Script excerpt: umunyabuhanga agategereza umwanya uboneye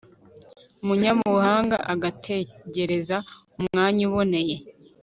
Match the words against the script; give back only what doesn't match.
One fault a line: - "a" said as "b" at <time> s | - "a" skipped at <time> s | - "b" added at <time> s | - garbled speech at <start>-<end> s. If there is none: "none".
none